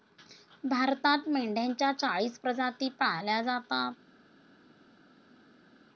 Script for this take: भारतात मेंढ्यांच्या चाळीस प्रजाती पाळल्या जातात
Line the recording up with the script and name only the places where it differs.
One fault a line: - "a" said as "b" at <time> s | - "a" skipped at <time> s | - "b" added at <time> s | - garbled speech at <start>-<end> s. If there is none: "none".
none